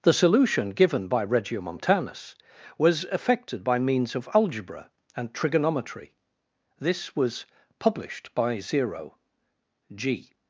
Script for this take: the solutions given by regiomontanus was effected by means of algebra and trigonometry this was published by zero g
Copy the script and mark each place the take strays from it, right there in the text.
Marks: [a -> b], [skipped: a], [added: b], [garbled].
the [solutions -> solution] given by regiomontanus was effected by means of algebra and trigonometry this was published by zero g